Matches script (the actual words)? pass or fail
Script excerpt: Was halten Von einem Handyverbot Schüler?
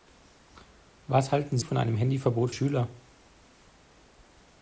pass